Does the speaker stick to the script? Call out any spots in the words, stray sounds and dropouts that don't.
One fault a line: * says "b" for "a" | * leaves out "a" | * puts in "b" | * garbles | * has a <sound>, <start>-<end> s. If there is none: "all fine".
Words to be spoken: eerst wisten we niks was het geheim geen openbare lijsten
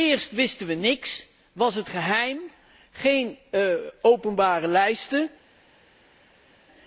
all fine